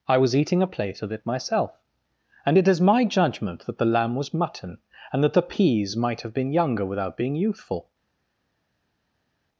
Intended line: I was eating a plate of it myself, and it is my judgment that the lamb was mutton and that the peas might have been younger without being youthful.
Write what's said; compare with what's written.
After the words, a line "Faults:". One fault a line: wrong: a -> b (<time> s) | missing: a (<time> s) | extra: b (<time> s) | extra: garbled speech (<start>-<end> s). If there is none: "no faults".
I was eating a plate of it myself, and it is my judgment that the lamb was mutton and that the peas might have been younger without being youthful.
Faults:
no faults